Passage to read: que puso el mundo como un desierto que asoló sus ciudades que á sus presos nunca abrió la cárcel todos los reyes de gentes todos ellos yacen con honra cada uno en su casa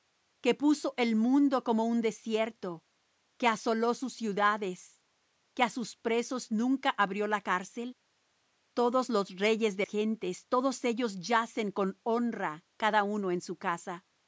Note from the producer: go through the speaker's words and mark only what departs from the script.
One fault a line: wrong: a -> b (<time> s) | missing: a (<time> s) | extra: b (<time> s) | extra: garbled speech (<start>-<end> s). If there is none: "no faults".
no faults